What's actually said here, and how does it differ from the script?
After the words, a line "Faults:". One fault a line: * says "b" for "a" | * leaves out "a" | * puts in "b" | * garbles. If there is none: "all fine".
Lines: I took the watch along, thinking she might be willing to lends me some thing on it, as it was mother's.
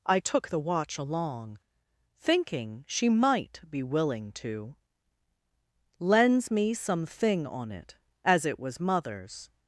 I took the watch along, thinking she might be willing to lends me some thing on it, as it was mother's.
Faults:
all fine